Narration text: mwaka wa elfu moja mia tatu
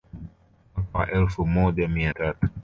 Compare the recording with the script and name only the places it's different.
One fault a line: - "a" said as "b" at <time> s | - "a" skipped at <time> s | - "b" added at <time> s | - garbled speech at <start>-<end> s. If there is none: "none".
none